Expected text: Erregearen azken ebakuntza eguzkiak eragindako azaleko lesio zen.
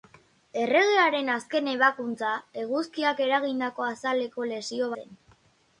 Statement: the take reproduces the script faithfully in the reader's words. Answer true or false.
true